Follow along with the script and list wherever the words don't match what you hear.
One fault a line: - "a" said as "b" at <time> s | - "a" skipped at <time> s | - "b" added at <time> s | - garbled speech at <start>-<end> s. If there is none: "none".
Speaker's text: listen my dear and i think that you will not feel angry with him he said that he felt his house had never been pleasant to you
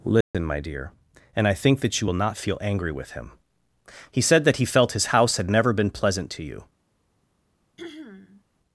none